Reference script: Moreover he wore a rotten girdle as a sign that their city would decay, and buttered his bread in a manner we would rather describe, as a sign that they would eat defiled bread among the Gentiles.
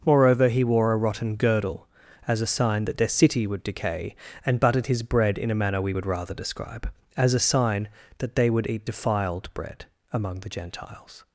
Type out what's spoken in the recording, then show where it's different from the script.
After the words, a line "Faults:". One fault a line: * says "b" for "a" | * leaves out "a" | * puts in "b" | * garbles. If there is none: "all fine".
Moreover he wore a rotten girdle as a sign that their city would decay, and buttered his bread in a manner we would rather describe, as a sign that they would eat defiled bread among the Gentiles.
Faults:
all fine